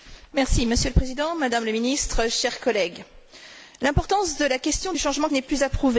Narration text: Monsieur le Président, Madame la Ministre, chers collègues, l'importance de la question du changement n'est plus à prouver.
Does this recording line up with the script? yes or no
yes